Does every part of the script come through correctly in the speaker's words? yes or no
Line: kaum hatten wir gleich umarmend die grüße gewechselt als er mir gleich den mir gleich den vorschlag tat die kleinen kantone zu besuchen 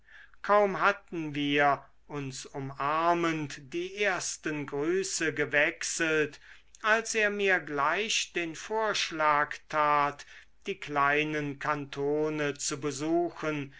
no